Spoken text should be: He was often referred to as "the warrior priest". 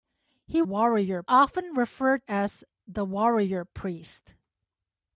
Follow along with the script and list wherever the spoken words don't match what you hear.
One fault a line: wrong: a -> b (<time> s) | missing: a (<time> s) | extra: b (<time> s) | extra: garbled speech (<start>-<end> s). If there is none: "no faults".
wrong: was -> warrior (0.6 s)
missing: to (2.3 s)